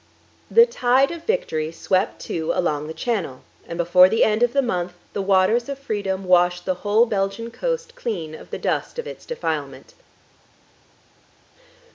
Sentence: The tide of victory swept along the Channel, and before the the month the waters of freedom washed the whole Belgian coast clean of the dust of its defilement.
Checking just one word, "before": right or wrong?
right